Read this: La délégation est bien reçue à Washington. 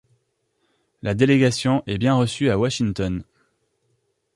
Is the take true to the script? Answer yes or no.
yes